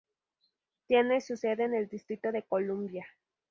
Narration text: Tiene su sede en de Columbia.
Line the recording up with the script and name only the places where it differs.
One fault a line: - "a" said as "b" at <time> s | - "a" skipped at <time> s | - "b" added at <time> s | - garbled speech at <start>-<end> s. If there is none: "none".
- "el Distrito" added at 1.7 s